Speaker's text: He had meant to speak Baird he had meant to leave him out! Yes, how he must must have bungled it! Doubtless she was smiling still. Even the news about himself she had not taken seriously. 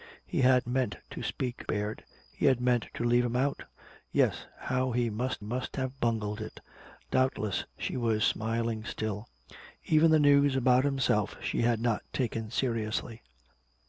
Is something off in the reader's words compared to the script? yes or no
no